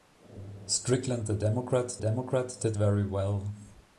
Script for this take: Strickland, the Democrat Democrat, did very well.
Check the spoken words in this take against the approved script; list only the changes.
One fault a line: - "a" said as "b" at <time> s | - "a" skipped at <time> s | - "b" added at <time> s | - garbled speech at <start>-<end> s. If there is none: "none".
none